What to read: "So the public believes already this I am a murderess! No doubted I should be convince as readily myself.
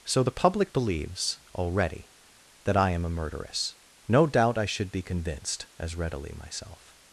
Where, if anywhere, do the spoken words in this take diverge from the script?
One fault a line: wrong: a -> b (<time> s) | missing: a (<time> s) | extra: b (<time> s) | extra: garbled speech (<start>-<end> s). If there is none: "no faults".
wrong: this -> that (2.6 s)
wrong: doubted -> doubt (4.3 s)
wrong: convince -> convinced (5.0 s)